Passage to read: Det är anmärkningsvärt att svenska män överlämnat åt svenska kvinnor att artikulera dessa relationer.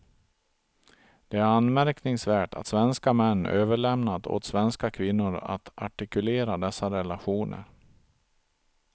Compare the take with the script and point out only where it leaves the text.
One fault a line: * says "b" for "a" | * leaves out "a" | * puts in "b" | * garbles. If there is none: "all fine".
all fine